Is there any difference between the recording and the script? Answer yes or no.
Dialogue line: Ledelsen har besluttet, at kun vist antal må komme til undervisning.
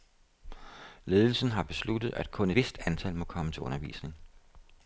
no